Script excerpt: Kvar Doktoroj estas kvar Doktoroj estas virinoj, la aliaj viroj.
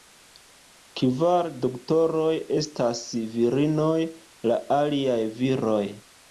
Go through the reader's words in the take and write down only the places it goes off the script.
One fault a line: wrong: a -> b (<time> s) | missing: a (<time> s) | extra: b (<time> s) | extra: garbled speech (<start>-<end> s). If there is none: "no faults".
missing: kvar Doktoroj estas (3.0 s)